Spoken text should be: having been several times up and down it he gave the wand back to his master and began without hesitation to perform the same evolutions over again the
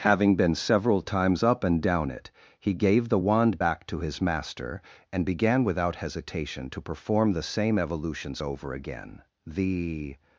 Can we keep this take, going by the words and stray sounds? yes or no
yes